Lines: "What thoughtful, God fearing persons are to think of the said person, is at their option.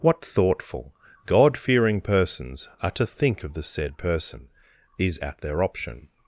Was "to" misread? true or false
false